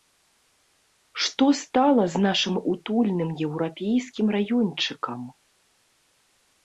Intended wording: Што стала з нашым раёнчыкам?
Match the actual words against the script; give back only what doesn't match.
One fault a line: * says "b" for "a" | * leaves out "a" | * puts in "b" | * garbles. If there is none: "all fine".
* puts in "утульным еўрапейскім"